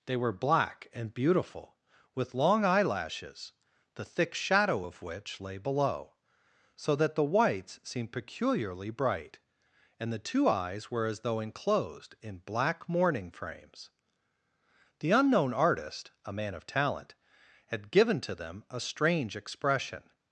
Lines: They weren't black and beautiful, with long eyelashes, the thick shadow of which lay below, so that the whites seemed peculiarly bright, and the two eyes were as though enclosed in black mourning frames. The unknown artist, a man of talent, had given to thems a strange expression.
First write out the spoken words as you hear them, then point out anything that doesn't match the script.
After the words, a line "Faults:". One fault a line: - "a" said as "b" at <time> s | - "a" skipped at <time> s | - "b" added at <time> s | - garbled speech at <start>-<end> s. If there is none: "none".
They were black and beautiful, with long eyelashes, the thick shadow of which lay below, so that the whites seemed peculiarly bright, and the two eyes were as though enclosed in black mourning frames. The unknown artist, a man of talent, had given to them a strange expression.
Faults:
- "weren't" said as "were" at 0.2 s
- "thems" said as "them" at 18.4 s